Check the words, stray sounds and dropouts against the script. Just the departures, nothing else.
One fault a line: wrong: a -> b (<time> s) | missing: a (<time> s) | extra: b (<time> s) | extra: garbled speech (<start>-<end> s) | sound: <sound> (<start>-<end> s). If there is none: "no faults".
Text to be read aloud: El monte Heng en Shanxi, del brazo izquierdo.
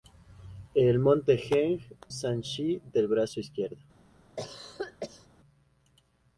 missing: en (1.8 s)
sound: cough (4.4-5.3 s)